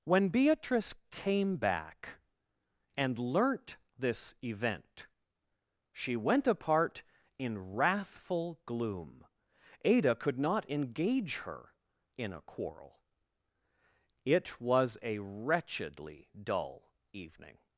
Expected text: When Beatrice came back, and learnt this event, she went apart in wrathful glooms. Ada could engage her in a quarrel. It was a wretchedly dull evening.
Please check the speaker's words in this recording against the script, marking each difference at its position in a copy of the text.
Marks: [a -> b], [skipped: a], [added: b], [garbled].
When Beatrice came back, and learnt this event, she went apart in wrathful [glooms. -> gloom] Ada could [added: not] engage her in a quarrel. It was a wretchedly dull evening.